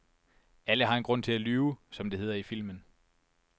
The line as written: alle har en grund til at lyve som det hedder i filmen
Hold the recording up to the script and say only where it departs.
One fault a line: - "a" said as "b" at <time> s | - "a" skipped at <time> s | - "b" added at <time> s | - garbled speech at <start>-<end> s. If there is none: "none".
none